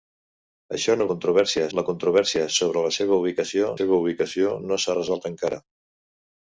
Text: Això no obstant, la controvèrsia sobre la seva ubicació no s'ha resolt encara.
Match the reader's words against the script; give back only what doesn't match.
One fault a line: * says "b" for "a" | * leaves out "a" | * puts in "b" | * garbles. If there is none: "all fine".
* says "controvèrsia" for "obstant"
* puts in "seva ubicació"